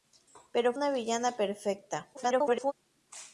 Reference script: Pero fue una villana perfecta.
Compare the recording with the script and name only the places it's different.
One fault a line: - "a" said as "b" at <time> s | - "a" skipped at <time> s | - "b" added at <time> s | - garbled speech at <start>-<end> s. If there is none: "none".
- "fue" skipped at 0.7 s
- garbled speech at 2.1-2.7 s